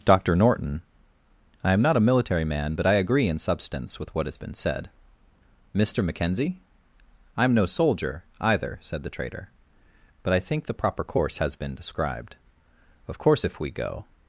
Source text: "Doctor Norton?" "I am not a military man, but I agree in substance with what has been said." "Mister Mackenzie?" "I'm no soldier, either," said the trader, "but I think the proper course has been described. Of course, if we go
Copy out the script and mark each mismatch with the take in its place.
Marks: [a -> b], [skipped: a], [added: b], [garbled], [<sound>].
"Doctor Norton?" "I am not a military man, but I agree in substance with what has been said." "Mister Mackenzie?" "I'm no soldier, either," said the trader, "but I think the proper course has been described. Of course, if we go